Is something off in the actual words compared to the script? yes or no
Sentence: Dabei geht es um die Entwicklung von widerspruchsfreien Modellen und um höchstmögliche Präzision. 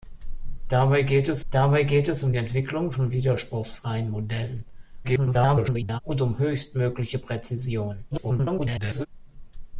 yes